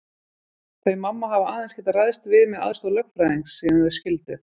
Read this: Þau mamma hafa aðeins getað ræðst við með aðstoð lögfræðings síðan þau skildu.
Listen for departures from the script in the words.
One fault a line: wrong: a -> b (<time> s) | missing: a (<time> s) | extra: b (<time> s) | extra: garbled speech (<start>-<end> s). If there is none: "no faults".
no faults